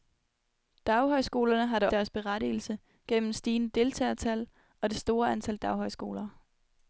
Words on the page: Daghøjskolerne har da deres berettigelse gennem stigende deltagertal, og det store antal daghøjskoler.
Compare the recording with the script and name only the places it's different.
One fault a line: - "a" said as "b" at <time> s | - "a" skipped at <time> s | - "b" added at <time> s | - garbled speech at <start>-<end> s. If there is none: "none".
none